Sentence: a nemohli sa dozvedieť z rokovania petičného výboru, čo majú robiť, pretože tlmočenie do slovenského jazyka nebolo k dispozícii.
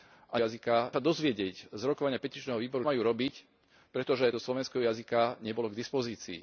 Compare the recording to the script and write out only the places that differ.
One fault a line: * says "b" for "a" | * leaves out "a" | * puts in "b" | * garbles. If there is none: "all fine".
* says "jazyka" for "nemohli"
* leaves out "čo"
* leaves out "tlmočenie"